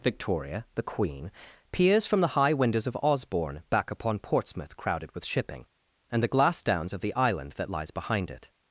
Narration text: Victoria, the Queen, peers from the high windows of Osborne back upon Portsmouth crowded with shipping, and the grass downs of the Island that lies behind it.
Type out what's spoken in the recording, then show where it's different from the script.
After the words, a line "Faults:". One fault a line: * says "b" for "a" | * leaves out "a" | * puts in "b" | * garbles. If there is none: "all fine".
Victoria, the Queen, peers from the high windows of Osborne back upon Portsmouth crowded with shipping, and the glass downs of the Island that lies behind it.
Faults:
* says "glass" for "grass"